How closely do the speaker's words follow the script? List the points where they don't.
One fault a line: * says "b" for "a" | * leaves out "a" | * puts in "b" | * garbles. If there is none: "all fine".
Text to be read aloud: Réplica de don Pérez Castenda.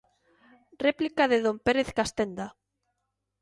all fine